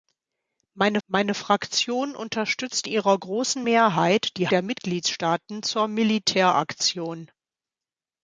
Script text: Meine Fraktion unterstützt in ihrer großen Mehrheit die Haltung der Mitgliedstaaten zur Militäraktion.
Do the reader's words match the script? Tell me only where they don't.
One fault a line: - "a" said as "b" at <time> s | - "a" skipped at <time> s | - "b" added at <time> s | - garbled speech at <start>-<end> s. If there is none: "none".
- "meine" added at 1.1 s
- "in" skipped at 2.9 s
- "Haltung" skipped at 4.5 s